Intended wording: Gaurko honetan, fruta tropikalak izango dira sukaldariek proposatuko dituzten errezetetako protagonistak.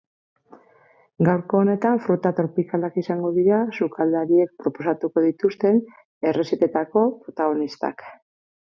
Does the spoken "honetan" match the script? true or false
true